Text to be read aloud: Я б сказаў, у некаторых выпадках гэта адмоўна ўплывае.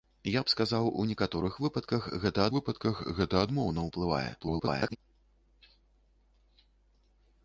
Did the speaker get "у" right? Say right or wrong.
right